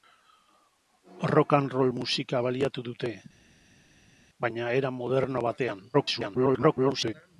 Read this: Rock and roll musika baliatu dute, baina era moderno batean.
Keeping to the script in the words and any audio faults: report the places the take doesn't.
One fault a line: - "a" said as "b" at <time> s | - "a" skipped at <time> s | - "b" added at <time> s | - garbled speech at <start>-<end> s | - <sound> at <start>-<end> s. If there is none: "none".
- garbled speech at 5.9-7.1 s